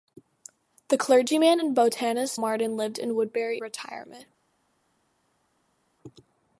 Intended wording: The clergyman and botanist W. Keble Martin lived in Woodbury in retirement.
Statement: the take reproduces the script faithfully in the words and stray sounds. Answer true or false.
false